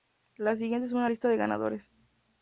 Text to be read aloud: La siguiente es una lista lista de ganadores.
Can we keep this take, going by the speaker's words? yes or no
no